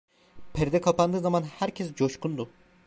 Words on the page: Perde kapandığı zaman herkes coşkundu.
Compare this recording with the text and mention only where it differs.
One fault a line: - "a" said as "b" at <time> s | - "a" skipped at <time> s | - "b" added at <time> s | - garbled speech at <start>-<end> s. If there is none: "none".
none